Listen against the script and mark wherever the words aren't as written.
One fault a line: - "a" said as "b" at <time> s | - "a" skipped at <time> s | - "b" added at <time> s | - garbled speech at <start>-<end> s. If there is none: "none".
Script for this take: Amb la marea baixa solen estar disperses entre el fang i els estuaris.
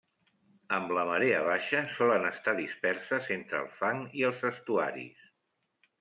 none